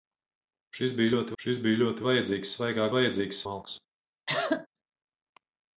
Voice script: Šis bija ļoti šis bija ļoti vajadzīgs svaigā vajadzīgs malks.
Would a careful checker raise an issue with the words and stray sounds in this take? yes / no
yes